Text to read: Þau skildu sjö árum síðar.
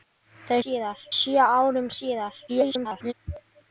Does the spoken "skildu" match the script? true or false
false